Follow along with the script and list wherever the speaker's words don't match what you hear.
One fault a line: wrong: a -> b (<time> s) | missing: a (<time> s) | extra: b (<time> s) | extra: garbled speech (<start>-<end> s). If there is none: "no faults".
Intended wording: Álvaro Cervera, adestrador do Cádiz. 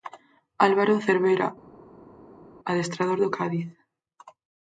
no faults